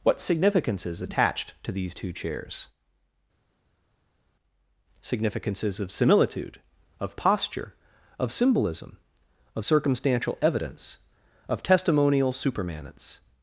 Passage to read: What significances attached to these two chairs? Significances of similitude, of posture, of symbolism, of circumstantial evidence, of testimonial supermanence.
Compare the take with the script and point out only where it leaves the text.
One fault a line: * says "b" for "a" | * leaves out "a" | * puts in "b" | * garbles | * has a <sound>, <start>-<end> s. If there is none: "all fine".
all fine